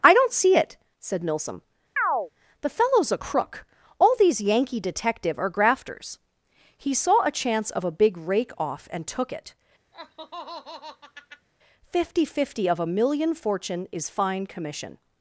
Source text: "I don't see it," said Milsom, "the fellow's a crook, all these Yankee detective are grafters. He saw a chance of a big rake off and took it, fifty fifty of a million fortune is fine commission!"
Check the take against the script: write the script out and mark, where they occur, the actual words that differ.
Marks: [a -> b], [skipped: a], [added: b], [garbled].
"I don't see it," said Milsom, "the fellow's a crook, all these Yankee detective are grafters. He saw a chance of a big rake off and took it, fifty fifty of a million fortune is fine commission!"